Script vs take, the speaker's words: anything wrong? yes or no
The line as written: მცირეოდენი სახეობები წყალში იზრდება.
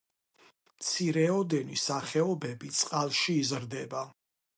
no